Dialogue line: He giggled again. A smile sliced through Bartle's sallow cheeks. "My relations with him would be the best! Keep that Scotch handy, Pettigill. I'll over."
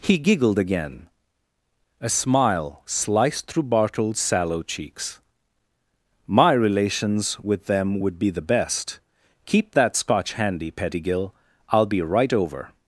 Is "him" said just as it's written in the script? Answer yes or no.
no